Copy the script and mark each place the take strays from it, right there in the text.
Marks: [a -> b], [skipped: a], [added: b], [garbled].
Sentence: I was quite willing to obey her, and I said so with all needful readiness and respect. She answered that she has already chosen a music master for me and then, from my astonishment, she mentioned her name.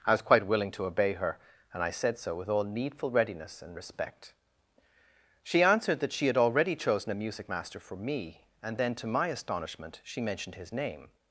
I was quite willing to obey her, and I said so with all needful readiness and respect. She answered that she [has -> had] already chosen a music master for me and then, [from -> to] my astonishment, she mentioned [her -> his] name.